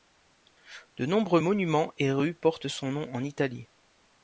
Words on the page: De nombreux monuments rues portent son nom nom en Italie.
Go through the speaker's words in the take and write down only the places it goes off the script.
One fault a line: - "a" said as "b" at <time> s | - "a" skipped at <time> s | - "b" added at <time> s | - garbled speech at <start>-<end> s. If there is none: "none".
- "et" added at 2.0 s
- "nom" skipped at 3.1 s